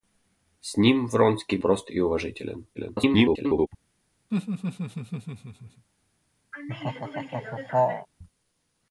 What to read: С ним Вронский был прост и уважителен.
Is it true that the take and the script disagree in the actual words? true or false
true